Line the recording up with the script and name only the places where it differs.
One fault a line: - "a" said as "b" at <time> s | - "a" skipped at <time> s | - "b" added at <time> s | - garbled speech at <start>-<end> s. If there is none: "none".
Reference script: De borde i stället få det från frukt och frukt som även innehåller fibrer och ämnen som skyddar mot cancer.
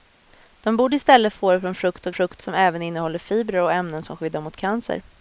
none